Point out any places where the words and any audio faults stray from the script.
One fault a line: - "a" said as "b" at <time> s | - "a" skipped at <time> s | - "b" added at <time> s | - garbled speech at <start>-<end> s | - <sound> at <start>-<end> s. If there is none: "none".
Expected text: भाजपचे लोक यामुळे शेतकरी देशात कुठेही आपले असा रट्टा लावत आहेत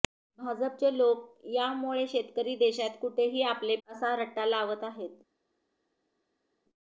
none